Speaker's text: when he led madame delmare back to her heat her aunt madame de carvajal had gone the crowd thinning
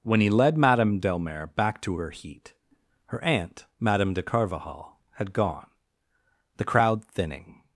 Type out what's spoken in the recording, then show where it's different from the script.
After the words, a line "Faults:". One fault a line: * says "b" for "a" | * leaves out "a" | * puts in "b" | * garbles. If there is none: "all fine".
when he led madame delmare back to her heat her aunt madame de carvajal had gone the crowd thinning
Faults:
all fine